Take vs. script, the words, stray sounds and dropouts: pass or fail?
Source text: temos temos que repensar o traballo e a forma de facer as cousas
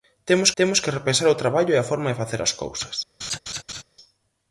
fail